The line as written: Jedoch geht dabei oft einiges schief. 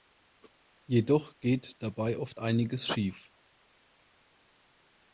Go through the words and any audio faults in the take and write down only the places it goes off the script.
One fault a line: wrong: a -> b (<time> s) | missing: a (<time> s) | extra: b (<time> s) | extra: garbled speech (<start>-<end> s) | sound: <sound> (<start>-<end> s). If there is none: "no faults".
no faults